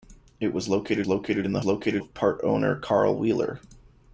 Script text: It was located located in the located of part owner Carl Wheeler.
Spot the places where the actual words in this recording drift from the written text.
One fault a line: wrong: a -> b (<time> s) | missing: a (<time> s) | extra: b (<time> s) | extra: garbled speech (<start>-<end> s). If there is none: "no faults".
no faults